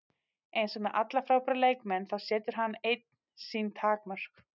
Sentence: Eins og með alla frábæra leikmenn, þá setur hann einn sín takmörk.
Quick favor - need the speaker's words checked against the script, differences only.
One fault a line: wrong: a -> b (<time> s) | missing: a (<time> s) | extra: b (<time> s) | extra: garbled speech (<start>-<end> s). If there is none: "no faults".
no faults